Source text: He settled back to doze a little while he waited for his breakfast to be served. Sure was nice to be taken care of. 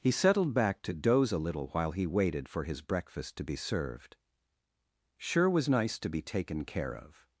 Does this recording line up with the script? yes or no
yes